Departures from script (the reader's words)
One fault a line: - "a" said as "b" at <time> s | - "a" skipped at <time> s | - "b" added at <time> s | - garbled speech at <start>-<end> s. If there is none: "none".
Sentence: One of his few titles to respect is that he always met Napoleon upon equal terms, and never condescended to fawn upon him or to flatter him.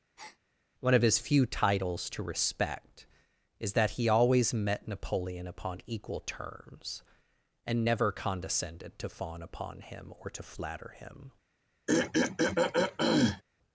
none